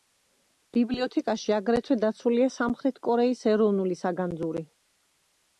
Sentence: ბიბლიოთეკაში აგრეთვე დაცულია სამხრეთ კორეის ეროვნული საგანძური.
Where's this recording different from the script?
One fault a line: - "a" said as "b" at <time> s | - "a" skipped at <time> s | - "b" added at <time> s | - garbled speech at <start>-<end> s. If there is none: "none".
none